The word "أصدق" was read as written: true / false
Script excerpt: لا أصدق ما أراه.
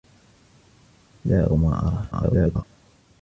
false